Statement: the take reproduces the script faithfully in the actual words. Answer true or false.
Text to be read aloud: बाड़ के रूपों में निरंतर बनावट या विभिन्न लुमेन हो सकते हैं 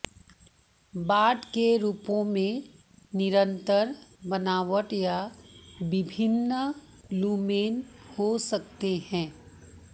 true